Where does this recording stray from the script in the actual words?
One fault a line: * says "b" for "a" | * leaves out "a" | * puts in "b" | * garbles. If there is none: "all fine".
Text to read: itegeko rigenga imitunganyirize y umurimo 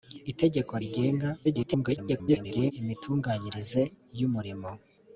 * garbles